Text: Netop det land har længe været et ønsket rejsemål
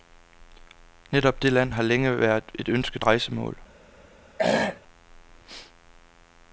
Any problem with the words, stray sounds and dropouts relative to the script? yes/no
yes